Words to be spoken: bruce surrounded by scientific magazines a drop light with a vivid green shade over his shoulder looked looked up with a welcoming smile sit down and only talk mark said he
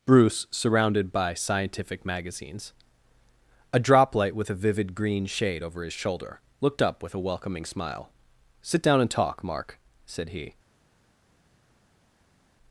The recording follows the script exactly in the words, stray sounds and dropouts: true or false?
false